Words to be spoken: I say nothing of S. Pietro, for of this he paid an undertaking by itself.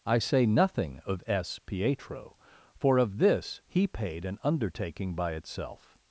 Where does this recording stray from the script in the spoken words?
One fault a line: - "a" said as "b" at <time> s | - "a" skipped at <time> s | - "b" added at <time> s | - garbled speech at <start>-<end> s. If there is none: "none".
none